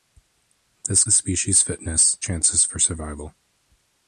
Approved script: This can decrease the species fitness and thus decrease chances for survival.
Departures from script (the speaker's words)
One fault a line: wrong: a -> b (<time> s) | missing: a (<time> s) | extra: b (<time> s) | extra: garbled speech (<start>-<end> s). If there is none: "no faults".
missing: can decrease (1.0 s)
missing: and thus decrease (2.2 s)